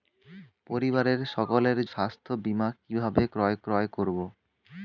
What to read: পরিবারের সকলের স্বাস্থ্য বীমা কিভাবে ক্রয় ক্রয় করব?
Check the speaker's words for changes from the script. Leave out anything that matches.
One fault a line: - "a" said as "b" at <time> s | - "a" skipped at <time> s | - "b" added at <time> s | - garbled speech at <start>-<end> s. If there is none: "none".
none